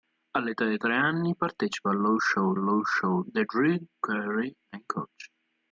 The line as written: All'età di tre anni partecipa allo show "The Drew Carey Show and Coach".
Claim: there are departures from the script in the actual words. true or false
true